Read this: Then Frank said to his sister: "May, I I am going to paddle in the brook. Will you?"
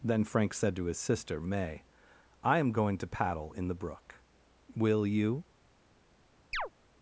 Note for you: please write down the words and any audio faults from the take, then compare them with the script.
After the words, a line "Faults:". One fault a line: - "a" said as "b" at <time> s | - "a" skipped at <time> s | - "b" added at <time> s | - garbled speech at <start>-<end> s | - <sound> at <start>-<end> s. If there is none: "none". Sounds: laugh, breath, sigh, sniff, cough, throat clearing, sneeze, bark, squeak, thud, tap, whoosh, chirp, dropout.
Then Frank said to his sister: "May, I am going to paddle in the brook. Will you?"
Faults:
- "I" skipped at 2.6 s
- chirp at 6.5-6.7 s